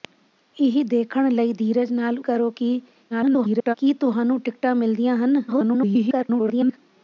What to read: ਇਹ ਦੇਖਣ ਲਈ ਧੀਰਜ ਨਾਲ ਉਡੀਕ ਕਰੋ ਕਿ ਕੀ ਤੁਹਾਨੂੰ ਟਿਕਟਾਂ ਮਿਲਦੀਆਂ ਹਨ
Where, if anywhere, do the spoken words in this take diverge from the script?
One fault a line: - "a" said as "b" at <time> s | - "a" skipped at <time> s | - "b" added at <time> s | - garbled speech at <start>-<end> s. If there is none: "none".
- "ਉਡੀਕ" skipped at 2.2 s
- garbled speech at 3.1-3.7 s
- garbled speech at 5.5-6.8 s